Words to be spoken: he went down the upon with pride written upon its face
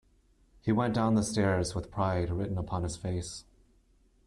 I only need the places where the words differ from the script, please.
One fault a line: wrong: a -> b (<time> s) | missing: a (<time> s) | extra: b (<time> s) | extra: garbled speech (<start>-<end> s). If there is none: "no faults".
wrong: upon -> stairs (1.2 s)
wrong: its -> his (2.8 s)